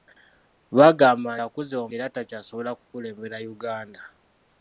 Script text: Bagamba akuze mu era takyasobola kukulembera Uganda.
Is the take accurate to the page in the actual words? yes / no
yes